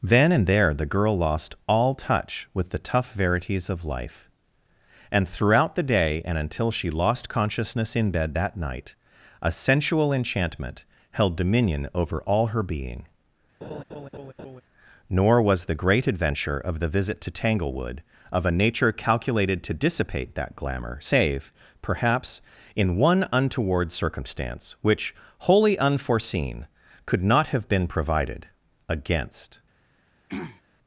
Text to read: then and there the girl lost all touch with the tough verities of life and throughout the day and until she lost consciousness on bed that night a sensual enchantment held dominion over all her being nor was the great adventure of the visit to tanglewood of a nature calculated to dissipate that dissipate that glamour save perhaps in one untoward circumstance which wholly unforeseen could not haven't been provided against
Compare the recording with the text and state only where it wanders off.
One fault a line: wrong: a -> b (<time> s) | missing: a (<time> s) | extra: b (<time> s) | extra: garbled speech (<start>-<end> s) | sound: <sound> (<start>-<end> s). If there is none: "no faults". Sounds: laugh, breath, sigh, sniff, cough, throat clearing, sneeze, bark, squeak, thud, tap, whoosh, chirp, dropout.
wrong: on -> in (8.0 s)
sound: laugh (13.6-14.6 s)
missing: dissipate that (20.6 s)
wrong: haven't -> have (27.5 s)
sound: throat clearing (30.3-30.6 s)